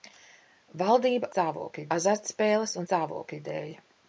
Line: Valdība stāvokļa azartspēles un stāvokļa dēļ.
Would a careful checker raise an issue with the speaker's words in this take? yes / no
no